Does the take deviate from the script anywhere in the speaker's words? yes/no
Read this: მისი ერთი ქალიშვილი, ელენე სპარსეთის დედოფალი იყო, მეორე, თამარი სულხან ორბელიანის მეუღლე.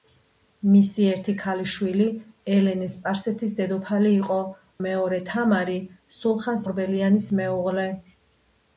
no